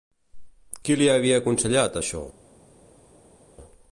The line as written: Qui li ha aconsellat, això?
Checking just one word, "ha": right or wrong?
wrong